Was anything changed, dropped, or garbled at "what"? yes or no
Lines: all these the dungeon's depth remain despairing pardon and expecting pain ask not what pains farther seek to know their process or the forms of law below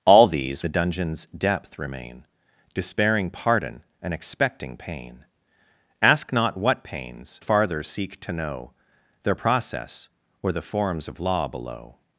no